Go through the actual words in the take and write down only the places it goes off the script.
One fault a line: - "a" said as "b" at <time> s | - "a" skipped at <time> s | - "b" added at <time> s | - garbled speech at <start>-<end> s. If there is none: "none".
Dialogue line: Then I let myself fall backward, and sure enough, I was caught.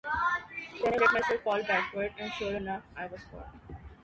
none